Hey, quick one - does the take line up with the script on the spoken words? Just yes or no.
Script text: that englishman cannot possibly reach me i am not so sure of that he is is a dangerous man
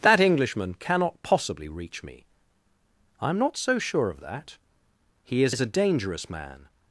yes